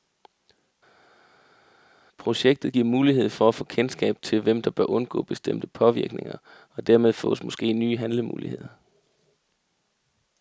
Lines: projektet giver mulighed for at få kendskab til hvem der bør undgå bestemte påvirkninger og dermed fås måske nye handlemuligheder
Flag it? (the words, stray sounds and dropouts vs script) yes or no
no